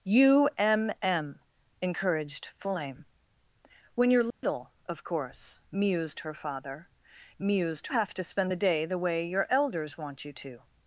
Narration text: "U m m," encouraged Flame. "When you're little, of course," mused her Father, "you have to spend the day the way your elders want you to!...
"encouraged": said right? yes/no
yes